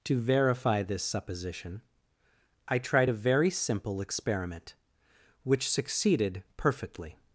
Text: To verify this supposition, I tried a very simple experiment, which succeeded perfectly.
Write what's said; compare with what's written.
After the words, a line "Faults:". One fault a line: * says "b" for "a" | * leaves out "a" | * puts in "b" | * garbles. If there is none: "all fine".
To verify this supposition, I tried a very simple experiment, which succeeded perfectly.
Faults:
all fine